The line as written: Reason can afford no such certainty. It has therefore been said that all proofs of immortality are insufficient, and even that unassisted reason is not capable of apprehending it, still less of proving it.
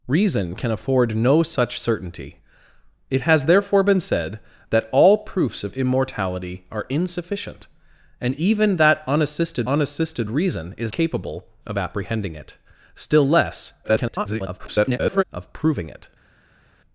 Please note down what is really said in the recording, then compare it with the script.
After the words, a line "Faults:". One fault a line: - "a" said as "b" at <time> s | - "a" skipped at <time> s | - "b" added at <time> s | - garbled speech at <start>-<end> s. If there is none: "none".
Reason can afford no such certainty. It has therefore been said that all proofs of immortality are insufficient, and even that unassisted unassisted reason is capable of apprehending it, still less [garbled] of proving it.
Faults:
- "unassisted" added at 9.7 s
- "not" skipped at 10.9 s
- garbled speech at 13.8-15.2 s